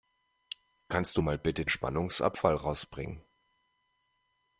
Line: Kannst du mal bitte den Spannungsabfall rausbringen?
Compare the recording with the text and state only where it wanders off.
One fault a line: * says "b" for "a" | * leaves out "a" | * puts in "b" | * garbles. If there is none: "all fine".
* leaves out "den"